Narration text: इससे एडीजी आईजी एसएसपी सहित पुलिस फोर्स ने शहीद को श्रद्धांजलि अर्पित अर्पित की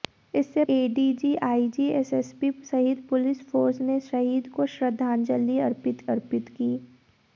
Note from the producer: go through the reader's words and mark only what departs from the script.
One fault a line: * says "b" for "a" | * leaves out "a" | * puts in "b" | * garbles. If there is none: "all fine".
all fine